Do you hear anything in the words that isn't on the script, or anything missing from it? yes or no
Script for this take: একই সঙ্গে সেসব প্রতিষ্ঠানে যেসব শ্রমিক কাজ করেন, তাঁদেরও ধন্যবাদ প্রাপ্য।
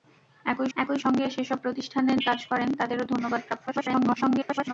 yes